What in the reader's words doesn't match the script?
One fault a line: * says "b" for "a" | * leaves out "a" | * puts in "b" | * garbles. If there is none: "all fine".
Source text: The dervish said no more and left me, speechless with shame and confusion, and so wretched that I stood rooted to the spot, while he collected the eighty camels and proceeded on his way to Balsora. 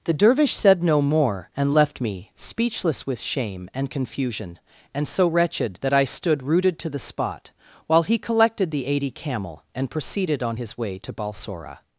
* says "camel" for "camels"